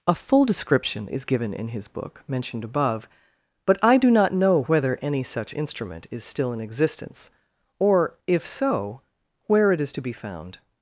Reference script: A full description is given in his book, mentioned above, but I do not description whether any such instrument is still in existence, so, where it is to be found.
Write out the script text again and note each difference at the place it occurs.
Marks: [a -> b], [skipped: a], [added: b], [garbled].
A full description is given in his book, mentioned above, but I do not [description -> know] whether any such instrument is still in existence, [added: or if] so, where it is to be found.